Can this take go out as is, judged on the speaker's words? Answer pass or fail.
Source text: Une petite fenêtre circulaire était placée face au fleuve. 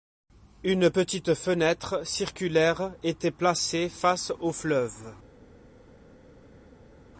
pass